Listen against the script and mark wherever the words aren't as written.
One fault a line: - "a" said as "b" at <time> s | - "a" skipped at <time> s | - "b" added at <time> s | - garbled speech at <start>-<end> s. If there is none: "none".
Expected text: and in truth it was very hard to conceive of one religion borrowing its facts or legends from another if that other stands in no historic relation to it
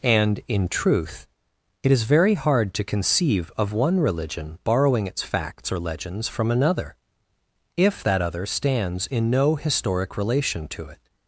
- "was" said as "is" at 1.9 s